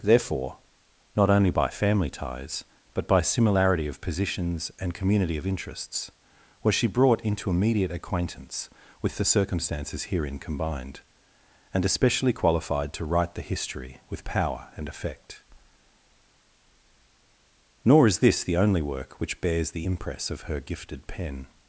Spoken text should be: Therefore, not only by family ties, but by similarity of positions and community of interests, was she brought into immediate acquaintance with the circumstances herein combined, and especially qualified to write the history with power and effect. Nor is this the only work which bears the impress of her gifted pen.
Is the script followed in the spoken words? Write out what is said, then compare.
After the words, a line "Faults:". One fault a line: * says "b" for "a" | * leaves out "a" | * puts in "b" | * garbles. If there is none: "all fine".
Therefore, not only by family ties, but by similarity of positions and community of interests, was she brought into immediate acquaintance with the circumstances herein combined, and especially qualified to write the history with power and effect. Nor is this the only work which bears the impress of her gifted pen.
Faults:
all fine